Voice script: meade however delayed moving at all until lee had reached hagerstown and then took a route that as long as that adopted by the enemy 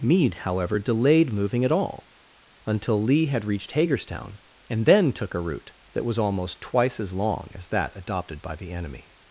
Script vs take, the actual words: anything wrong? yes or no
yes